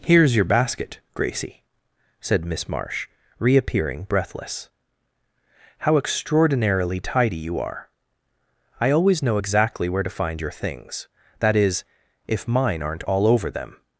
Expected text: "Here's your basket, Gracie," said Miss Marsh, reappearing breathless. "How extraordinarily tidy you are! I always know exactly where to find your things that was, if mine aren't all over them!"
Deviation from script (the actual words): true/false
true